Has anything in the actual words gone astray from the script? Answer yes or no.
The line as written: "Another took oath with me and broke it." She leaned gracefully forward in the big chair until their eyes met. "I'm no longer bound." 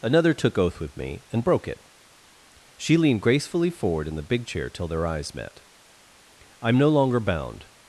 yes